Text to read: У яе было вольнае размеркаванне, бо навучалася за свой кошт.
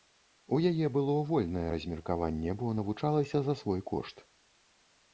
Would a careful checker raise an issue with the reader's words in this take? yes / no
no